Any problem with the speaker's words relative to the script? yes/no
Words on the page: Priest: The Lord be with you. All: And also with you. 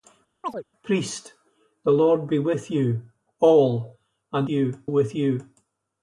yes